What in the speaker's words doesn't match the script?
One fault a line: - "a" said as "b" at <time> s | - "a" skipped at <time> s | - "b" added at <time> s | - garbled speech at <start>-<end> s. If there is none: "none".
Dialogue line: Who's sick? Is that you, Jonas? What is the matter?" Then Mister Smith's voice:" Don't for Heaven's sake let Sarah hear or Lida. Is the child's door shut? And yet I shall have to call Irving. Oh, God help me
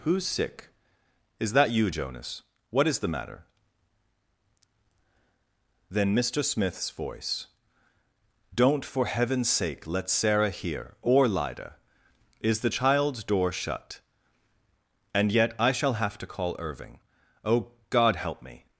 none